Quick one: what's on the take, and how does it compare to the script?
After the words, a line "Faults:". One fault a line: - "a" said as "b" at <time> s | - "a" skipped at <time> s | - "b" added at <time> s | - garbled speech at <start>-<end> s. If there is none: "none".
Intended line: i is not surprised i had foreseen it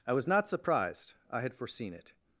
i was not surprised i had foreseen it
Faults:
- "is" said as "was" at 0.1 s